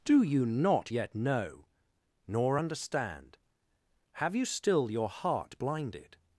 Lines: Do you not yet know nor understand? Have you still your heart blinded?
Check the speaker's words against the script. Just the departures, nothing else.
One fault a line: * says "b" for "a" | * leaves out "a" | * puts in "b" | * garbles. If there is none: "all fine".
all fine